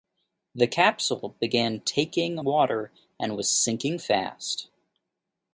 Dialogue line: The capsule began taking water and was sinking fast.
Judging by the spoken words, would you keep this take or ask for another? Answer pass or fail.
pass